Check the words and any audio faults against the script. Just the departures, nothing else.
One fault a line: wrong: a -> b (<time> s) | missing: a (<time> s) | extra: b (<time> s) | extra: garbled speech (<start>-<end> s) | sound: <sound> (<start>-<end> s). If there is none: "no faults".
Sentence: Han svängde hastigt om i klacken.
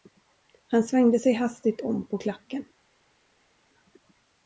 extra: sig (1.2 s)
wrong: i -> på (2.1 s)